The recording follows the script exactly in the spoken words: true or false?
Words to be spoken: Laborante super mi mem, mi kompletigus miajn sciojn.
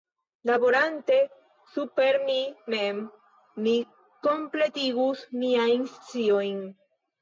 true